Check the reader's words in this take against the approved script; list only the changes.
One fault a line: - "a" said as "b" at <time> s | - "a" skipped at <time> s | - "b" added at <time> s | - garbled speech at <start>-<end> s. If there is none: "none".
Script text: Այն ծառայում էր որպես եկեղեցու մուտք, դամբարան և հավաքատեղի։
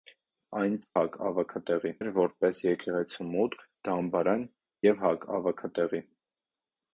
- "ծառայում" said as "հավաքատեղի" at 1.0 s